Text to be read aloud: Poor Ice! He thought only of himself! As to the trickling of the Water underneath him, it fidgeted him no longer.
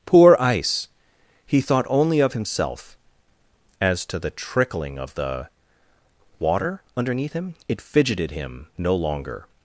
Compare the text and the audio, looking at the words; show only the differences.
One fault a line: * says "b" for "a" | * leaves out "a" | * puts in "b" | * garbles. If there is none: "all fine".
all fine